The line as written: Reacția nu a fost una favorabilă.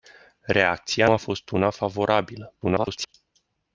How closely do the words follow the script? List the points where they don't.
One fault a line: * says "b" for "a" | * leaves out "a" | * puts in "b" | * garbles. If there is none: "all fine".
* leaves out "nu"
* garbles